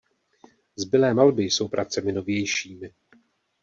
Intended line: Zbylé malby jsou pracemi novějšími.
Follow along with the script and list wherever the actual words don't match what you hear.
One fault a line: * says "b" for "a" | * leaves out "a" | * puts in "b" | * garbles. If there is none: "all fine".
all fine